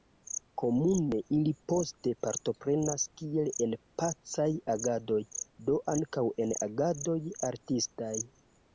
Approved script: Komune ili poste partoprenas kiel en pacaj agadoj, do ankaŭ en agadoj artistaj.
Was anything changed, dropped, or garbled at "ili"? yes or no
no